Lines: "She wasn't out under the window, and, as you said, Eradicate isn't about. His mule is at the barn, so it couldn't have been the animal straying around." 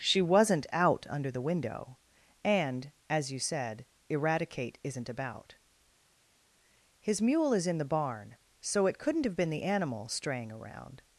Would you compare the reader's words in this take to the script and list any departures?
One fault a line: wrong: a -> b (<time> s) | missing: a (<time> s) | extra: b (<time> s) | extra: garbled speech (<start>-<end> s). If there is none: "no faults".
wrong: at -> in (7.7 s)